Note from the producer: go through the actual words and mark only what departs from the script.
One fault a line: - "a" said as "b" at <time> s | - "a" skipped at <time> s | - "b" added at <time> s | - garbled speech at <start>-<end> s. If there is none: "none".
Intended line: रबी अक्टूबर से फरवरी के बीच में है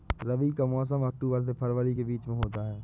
- "का मौसम" added at 0.5 s
- "होता" added at 2.4 s